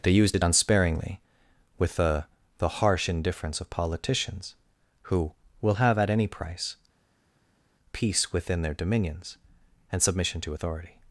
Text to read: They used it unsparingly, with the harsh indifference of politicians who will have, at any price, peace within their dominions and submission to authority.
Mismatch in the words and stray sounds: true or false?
true